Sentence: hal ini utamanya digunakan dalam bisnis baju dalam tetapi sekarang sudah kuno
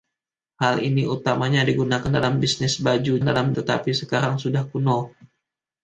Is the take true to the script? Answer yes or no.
yes